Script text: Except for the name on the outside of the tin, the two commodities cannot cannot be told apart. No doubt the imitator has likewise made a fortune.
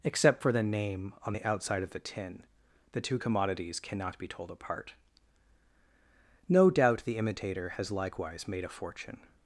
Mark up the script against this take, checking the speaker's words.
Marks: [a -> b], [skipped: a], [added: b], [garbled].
Except for the name on the outside of the tin, the two commodities cannot [skipped: cannot] be told apart. No doubt the imitator has likewise made a fortune.